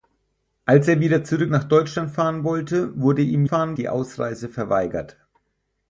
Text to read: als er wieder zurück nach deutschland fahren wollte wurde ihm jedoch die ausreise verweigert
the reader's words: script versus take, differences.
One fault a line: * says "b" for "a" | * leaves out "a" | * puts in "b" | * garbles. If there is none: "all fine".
* says "fahren" for "jedoch"